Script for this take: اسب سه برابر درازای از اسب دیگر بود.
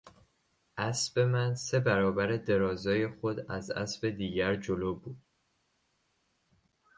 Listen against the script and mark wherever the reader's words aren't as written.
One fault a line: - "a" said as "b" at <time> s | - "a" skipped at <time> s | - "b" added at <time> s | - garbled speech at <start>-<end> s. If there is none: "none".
- "من" added at 1.2 s
- "خود" added at 3.1 s
- "جلو" added at 4.5 s